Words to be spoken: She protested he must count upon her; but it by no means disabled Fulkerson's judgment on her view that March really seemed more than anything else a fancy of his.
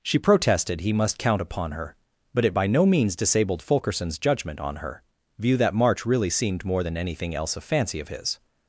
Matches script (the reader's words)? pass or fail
pass